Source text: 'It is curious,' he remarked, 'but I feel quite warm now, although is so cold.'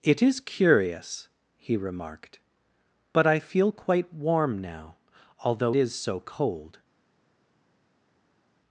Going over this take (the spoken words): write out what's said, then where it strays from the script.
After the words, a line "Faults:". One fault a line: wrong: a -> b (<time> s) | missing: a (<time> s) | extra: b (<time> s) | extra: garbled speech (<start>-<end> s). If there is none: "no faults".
'It is curious,' he remarked, 'but I feel quite warm now, although is so cold.'
Faults:
no faults